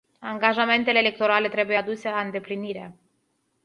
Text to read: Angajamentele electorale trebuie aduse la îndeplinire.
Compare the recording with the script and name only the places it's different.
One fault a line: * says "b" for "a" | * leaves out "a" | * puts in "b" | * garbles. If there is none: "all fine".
all fine